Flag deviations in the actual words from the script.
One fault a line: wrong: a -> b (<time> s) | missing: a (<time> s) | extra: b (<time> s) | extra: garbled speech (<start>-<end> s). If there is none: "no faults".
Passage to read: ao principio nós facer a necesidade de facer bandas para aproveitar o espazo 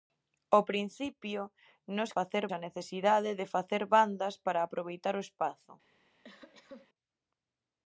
no faults